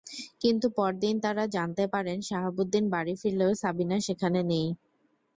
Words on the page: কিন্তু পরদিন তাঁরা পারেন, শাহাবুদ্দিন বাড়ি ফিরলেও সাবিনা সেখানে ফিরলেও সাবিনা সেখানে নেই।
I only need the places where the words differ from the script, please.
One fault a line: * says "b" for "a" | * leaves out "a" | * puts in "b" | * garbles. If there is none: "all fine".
* puts in "জানতে"
* leaves out "ফিরলেও সাবিনা সেখানে"